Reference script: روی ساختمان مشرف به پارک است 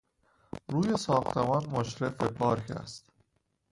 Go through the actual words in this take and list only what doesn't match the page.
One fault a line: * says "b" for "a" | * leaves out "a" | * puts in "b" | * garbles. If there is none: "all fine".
all fine